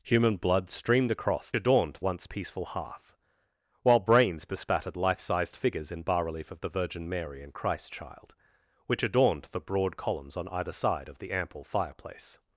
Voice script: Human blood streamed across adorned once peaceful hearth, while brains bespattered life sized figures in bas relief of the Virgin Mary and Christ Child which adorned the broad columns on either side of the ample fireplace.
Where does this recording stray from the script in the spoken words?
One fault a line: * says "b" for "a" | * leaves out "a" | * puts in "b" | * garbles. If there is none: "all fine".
all fine